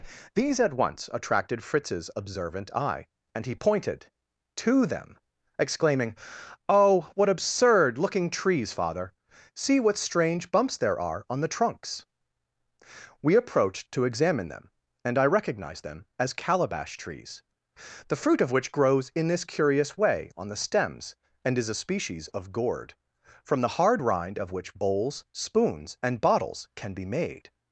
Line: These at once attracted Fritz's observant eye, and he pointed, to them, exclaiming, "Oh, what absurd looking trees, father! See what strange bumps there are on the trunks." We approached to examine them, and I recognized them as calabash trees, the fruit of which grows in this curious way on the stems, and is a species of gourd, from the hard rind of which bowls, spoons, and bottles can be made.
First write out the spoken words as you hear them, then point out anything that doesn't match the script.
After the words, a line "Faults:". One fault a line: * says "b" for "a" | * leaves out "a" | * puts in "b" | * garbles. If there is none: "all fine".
These at once attracted Fritz's observant eye, and he pointed, to them, exclaiming, "Oh, what absurd looking trees, father! See what strange bumps there are on the trunks." We approached to examine them, and I recognized them as calabash trees, the fruit of which grows in this curious way on the stems, and is a species of gourd, from the hard rind of which bowls, spoons, and bottles can be made.
Faults:
all fine